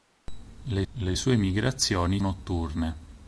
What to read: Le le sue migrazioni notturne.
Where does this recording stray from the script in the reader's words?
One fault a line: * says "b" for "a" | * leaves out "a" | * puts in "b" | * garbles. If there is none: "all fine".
all fine